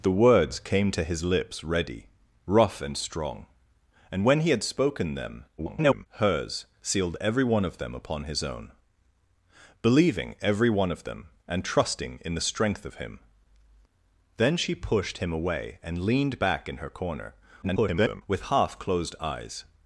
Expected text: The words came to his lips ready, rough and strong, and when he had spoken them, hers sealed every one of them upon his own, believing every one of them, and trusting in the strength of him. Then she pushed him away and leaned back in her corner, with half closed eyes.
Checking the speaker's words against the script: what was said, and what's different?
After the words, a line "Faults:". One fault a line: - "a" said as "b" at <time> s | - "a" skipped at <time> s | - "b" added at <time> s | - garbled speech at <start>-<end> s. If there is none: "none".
The words came to his lips ready, rough and strong, and when he had spoken them, [garbled] hers sealed every one of them upon his own, believing every one of them, and trusting in the strength of him. Then she pushed him away and leaned back in her corner, [garbled] with half closed eyes.
Faults:
- garbled speech at 5.6-6.1 s
- garbled speech at 17.6-18.2 s